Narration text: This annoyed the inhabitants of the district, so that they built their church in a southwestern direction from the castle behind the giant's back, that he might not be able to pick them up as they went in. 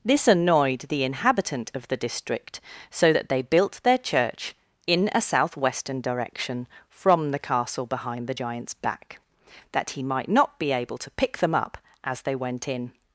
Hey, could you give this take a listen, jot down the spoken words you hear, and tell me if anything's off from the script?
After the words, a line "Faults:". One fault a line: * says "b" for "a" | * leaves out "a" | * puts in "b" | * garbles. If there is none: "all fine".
This annoyed the inhabitant of the district, so that they built their church in a southwestern direction from the castle behind the giant's back, that he might not be able to pick them up as they went in.
Faults:
* says "inhabitant" for "inhabitants"